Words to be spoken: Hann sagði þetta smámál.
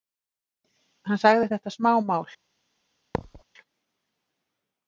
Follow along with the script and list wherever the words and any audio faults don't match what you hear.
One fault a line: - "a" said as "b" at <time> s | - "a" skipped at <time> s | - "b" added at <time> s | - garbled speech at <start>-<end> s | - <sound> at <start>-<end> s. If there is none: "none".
- thud at 3.1-3.4 s